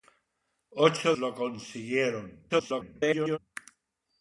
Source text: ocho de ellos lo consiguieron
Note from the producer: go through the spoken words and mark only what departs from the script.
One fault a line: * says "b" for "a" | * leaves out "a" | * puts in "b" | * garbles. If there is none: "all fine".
* leaves out "de ellos"
* garbles